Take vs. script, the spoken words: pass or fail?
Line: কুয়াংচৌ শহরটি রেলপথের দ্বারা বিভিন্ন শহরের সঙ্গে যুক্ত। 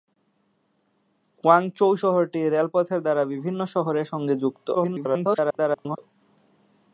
fail